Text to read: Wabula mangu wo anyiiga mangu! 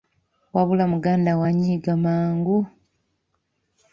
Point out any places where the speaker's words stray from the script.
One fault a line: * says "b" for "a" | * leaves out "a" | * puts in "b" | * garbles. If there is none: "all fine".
* says "muganda" for "mangu"